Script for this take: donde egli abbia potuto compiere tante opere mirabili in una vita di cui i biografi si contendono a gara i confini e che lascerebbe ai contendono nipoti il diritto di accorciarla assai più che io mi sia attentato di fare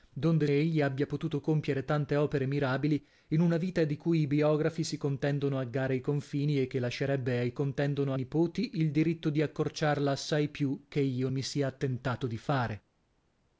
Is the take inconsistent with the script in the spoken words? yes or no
no